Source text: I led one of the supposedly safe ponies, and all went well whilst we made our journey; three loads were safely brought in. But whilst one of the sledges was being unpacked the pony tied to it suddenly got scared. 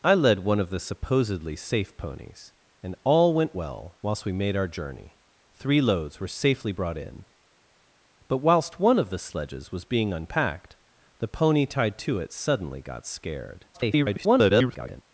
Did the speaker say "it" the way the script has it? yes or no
yes